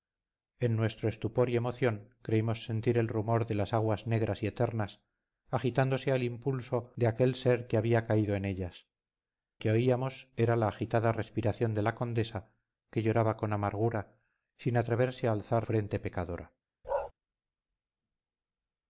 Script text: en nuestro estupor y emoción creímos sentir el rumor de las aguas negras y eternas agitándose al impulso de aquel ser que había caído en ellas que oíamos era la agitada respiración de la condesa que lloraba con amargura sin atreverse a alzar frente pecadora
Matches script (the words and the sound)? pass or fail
fail